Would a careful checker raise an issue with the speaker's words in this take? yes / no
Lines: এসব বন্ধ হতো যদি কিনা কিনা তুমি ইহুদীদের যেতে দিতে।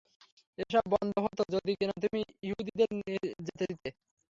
yes